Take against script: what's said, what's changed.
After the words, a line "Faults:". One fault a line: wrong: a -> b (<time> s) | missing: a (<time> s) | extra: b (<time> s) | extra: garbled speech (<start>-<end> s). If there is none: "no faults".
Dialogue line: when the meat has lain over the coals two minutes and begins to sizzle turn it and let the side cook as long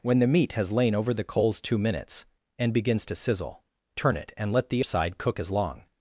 when the meat has lain over the coals two minutes and begins to sizzle turn it and let the side cook as long
Faults:
no faults